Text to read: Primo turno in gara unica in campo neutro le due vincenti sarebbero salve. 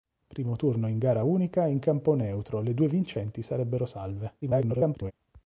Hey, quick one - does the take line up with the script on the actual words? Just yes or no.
no